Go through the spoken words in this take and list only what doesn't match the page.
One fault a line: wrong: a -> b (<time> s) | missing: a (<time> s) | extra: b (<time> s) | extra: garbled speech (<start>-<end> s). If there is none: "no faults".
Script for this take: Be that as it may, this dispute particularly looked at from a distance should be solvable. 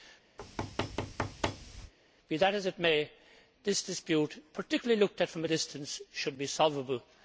no faults